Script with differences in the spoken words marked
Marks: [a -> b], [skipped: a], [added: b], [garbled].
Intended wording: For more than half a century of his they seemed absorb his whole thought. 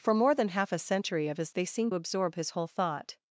For more than half a century of his they seemed absorb his whole thought.